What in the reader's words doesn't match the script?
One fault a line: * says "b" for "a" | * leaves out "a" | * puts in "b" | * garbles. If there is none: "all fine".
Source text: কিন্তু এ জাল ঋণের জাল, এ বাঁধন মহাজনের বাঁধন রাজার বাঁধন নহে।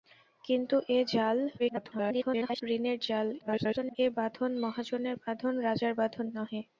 * garbles
* garbles